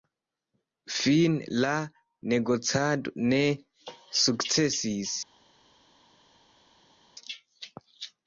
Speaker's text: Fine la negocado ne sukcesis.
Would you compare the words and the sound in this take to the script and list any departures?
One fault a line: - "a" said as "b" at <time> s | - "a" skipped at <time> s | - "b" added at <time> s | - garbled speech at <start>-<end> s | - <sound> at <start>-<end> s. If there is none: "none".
none